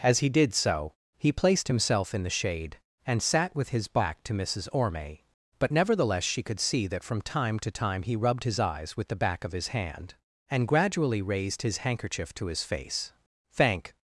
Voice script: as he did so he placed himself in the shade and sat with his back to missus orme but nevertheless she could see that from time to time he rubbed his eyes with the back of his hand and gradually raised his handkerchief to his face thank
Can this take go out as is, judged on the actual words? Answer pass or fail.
pass